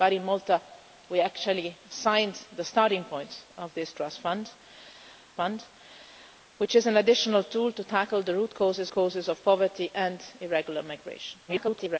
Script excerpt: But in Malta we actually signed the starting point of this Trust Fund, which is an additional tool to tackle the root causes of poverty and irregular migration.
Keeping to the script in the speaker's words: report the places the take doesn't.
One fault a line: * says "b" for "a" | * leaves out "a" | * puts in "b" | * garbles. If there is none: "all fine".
* puts in "Fund"
* puts in "causes"
* garbles